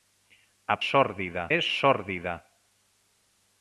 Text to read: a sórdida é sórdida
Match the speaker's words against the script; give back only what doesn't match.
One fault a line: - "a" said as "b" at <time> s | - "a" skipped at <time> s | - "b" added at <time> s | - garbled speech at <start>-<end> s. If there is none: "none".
none